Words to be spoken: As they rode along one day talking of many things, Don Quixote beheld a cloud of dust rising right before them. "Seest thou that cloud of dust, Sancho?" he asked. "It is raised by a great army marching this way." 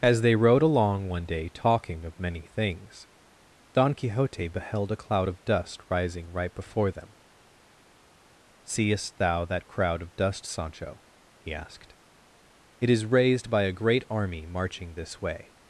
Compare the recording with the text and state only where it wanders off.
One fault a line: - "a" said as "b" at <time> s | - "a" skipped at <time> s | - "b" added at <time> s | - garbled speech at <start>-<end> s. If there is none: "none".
- "cloud" said as "crowd" at 9.7 s